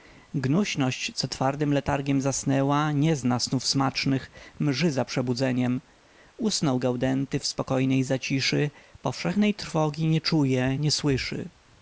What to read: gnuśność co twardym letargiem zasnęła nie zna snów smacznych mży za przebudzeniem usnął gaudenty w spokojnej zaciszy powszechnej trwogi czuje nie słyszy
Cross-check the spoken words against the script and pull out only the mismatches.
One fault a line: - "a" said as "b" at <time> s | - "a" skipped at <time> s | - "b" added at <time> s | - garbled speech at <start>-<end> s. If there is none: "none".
- "nie" added at 10.1 s